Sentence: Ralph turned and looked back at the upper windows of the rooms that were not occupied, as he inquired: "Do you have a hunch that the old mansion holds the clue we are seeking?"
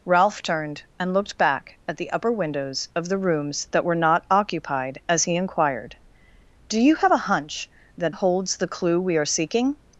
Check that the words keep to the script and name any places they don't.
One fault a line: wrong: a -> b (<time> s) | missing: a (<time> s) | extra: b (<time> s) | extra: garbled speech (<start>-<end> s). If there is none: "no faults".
missing: the old mansion (8.1 s)